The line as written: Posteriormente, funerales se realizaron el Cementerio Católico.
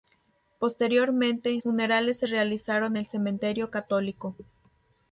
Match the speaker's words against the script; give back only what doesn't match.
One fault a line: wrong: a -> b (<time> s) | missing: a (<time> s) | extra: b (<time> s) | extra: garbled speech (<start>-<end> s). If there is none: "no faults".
no faults